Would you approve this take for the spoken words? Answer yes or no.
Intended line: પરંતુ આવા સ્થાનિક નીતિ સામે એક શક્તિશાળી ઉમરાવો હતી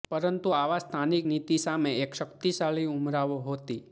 yes